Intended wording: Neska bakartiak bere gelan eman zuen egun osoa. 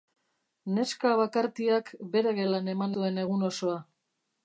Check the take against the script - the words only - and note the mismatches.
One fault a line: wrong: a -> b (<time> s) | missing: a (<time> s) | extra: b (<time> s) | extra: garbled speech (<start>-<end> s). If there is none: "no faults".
no faults